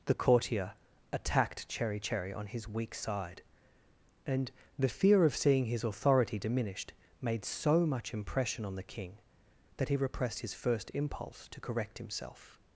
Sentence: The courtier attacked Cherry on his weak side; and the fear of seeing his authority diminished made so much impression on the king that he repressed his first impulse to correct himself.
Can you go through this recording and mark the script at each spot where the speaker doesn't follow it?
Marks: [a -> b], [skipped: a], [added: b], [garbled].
The courtier attacked Cherry [added: Cherry] on his weak side; and the fear of seeing his authority diminished made so much impression on the king that he repressed his first impulse to correct himself.